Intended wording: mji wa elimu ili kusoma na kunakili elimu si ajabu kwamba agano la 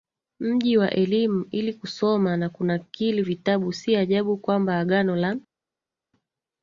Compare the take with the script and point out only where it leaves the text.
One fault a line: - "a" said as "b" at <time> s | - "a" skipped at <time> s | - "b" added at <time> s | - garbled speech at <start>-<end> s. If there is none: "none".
- "elimu" said as "vitabu" at 3.2 s